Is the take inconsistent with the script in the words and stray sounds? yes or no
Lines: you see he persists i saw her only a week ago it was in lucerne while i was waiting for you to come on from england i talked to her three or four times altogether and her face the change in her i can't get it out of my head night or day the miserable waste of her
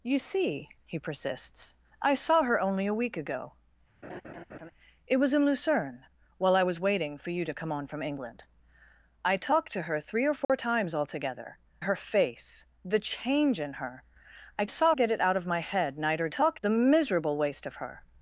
yes